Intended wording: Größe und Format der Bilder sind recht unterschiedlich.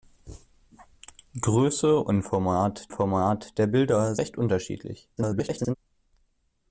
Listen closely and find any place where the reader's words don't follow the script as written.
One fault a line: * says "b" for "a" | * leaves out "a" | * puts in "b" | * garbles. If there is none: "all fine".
* puts in "Format"
* leaves out "sind"
* garbles